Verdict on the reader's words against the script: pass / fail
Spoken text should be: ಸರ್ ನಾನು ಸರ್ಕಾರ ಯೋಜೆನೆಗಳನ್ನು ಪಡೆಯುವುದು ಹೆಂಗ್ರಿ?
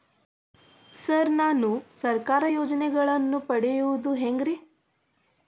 pass